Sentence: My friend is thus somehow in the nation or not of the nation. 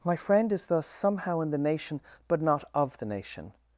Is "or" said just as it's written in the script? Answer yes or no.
no